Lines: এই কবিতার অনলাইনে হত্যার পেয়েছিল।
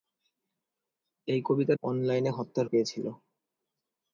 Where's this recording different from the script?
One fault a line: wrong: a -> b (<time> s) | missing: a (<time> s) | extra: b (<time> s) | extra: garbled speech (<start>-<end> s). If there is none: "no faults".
no faults